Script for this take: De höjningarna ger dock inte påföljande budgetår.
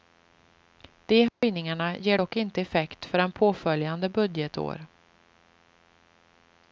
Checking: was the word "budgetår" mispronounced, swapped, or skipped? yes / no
no